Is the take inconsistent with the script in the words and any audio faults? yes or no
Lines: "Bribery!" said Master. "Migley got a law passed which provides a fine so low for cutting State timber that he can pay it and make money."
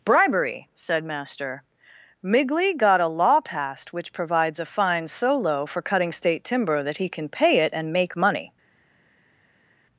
no